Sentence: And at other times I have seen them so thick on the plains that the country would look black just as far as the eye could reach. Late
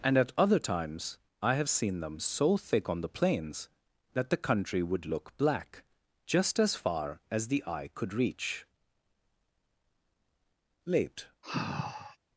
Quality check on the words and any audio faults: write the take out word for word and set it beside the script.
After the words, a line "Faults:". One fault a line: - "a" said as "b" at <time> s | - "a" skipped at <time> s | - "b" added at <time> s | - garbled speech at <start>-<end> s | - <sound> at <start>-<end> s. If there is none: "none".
And at other times I have seen them so thick on the plains that the country would look black just as far as the eye could reach. Late
Faults:
- sigh at 11.4-12.2 s